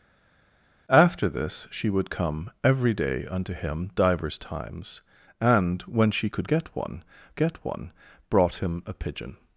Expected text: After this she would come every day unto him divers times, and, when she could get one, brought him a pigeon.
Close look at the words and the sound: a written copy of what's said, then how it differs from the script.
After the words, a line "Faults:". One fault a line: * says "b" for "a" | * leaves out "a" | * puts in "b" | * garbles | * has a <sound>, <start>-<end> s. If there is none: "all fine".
After this she would come every day unto him divers times, and, when she could get one get one, brought him a pigeon.
Faults:
* puts in "get one"